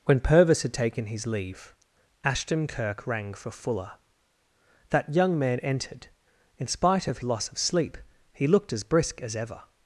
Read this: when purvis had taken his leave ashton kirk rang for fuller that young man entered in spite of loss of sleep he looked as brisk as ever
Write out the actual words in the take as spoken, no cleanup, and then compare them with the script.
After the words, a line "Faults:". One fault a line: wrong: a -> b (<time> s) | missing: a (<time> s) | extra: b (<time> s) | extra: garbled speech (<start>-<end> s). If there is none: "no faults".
when purvis had taken his leave ashton kirk rang for fuller that young man entered in spite of loss of sleep he looked as brisk as ever
Faults:
no faults